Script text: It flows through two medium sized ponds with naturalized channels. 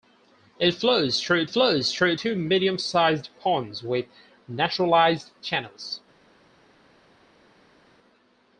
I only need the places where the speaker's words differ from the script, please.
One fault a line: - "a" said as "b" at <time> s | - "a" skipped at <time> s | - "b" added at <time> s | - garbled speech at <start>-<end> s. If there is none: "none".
- "flows through" added at 1.4 s